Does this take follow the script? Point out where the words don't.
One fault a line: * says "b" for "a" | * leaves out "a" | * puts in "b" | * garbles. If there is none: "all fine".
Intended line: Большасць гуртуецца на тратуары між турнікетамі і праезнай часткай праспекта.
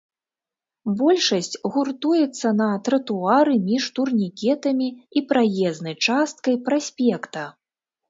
all fine